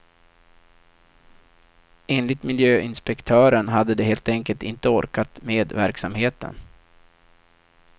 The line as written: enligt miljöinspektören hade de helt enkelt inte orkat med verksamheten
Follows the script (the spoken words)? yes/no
yes